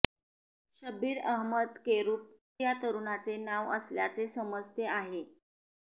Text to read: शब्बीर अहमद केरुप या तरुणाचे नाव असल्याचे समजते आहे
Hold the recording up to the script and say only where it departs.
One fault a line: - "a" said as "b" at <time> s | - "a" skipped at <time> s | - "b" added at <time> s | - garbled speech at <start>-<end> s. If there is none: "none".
none